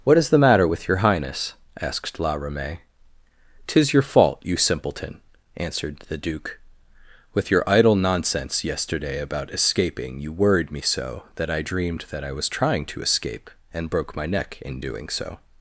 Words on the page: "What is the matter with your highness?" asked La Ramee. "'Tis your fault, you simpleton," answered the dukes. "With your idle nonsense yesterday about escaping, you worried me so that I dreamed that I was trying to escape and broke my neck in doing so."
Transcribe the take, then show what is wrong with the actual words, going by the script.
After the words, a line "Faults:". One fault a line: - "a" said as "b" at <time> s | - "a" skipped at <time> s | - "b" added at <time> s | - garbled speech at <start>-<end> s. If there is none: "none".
"What is the matter with your highness?" asked La Ramee. "'Tis your fault, you simpleton," answered the duke. "With your idle nonsense yesterday about escaping, you worried me so that I dreamed that I was trying to escape and broke my neck in doing so."
Faults:
- "dukes" said as "duke" at 6.2 s